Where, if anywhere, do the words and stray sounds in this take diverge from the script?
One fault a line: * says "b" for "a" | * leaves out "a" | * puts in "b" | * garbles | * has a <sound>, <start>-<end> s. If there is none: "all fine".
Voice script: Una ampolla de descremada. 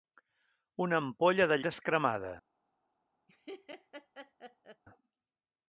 * has a laugh, 3.3-4.8 s